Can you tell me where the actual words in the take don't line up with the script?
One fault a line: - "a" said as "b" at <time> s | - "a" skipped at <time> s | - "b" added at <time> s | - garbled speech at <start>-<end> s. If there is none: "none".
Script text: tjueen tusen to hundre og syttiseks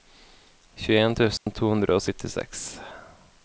none